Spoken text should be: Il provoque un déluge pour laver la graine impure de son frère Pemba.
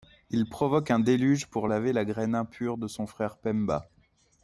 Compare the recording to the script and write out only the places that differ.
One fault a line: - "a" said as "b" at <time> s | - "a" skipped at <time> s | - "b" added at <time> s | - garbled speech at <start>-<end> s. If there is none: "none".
none